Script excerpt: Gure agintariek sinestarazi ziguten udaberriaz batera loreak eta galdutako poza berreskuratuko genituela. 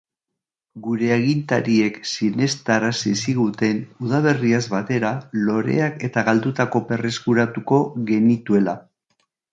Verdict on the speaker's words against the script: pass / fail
fail